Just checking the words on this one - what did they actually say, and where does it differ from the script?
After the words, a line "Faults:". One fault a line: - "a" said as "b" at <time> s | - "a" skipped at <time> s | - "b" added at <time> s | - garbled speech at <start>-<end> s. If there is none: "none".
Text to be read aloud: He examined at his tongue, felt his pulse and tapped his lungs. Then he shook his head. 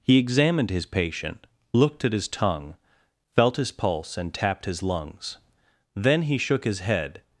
He examined his patient, looked at his tongue, felt his pulse and tapped his lungs. Then he shook his head.
Faults:
- "his patient looked" added at 0.7 s